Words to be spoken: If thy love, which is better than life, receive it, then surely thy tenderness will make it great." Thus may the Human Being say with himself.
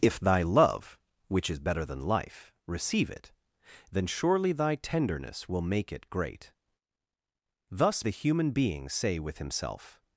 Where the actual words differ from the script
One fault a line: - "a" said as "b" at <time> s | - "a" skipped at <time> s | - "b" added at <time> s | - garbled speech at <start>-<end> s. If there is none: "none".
- "may" skipped at 8.1 s